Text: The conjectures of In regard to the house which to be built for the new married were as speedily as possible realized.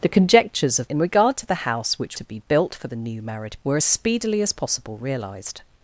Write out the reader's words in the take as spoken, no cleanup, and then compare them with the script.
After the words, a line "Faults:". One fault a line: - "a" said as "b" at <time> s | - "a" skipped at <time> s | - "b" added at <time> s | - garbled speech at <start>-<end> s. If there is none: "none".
The conjectures of In regard to the house which to be built for the new married were as speedily as possible realized.
Faults:
none